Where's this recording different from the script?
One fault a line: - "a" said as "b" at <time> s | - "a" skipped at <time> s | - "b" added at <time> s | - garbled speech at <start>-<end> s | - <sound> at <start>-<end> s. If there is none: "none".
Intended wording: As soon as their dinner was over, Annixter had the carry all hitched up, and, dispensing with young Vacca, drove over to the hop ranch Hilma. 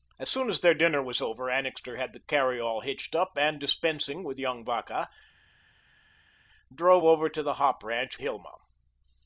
none